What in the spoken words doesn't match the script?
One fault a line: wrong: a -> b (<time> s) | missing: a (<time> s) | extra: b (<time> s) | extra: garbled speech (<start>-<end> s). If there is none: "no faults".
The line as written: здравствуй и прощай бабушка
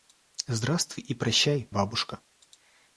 no faults